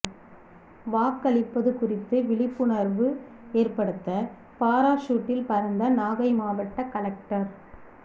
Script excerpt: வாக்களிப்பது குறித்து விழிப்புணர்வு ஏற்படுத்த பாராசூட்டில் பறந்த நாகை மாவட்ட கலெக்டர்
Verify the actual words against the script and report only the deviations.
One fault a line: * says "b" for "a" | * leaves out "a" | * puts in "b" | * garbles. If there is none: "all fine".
all fine